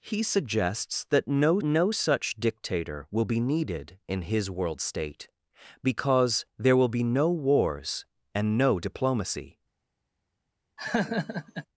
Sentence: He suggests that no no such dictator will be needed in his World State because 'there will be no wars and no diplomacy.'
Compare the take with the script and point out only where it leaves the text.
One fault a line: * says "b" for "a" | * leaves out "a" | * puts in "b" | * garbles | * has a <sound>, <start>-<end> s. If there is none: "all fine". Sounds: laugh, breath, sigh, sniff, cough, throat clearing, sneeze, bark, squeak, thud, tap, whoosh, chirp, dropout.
* has a laugh, 10.8-11.7 s